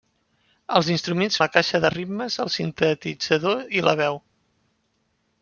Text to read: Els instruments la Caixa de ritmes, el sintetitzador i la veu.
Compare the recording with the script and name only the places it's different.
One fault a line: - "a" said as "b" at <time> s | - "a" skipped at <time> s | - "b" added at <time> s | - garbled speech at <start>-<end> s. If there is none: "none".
none